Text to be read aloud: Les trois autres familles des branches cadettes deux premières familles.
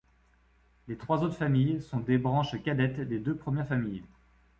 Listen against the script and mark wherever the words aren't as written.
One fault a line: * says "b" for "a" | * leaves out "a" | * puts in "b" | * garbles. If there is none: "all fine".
* puts in "sont"
* puts in "des"